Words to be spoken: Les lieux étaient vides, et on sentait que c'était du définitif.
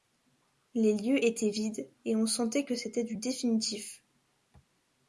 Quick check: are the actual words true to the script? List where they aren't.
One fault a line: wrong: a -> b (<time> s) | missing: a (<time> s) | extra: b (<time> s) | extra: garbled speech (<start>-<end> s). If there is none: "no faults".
no faults